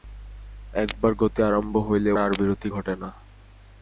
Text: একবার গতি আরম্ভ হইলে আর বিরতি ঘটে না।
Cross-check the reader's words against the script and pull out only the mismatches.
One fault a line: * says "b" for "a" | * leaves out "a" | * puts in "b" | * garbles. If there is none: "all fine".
all fine